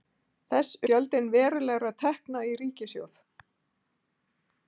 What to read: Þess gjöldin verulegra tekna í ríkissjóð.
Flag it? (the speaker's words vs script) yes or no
no